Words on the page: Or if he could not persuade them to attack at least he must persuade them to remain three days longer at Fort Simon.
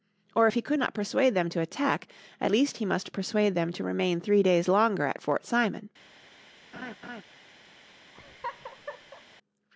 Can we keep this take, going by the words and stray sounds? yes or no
no